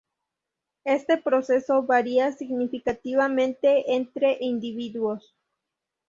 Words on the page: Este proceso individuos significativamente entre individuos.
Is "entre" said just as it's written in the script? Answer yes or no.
yes